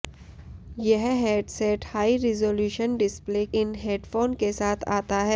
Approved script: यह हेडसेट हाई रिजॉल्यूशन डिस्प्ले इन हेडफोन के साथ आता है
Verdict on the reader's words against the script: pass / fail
pass